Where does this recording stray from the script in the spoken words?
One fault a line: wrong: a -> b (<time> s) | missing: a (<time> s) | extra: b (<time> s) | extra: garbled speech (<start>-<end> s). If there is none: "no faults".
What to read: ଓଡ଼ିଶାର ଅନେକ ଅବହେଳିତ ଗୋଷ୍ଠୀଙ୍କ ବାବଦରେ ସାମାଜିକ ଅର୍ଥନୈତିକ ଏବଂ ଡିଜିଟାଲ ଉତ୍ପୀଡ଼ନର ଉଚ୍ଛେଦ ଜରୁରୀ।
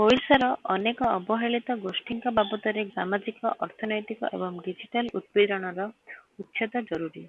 no faults